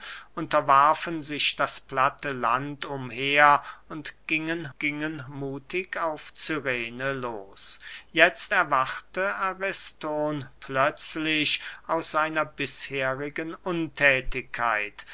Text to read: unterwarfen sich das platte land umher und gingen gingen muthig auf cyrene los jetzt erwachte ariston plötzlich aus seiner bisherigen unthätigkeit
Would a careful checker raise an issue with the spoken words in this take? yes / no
no